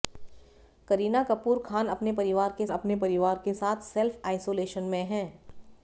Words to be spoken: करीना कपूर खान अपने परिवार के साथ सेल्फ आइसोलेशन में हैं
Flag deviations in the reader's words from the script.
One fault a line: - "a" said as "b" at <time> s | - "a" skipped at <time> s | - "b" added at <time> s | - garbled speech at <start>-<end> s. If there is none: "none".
- "अपने परिवार के" added at 2.7 s